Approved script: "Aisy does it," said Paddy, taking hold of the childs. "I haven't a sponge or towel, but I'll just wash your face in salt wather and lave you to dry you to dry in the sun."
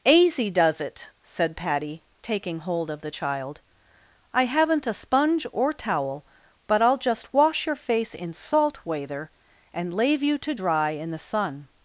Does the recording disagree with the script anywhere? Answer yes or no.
yes